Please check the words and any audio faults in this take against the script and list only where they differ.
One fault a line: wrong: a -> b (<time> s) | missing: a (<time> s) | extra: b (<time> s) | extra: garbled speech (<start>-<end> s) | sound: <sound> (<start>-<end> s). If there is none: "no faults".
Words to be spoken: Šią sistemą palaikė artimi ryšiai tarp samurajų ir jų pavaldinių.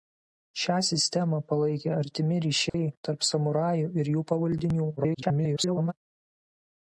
sound: dropout (2.7-2.7 s)
extra: garbled speech (5.0-5.9 s)